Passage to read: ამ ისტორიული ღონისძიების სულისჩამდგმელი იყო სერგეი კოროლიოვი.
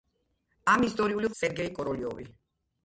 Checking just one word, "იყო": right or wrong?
wrong